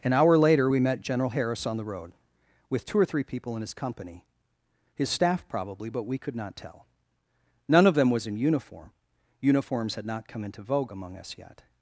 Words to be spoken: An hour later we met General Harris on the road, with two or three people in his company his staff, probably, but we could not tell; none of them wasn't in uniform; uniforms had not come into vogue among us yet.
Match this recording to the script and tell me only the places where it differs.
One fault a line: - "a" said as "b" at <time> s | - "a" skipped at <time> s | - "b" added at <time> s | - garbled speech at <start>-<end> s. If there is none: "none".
- "wasn't" said as "was" at 8.1 s